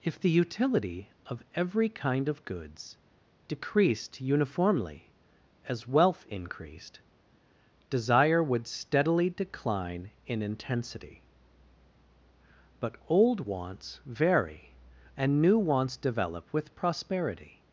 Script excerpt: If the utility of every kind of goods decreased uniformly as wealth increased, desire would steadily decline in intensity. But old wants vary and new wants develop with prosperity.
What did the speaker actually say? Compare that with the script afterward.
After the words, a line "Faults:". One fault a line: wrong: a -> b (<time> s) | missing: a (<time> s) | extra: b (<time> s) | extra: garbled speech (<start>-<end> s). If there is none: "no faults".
If the utility of every kind of goods decreased uniformly as wealth increased, desire would steadily decline in intensity. But old wants vary and new wants develop with prosperity.
Faults:
no faults